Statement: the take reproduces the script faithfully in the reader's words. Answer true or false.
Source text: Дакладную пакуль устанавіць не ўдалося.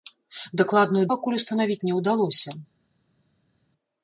true